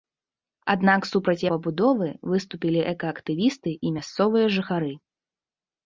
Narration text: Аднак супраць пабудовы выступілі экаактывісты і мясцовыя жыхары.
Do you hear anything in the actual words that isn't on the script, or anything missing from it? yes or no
no